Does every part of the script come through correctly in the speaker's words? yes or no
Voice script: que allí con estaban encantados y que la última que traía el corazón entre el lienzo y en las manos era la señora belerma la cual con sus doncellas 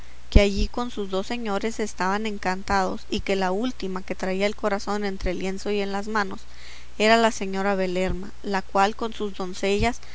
no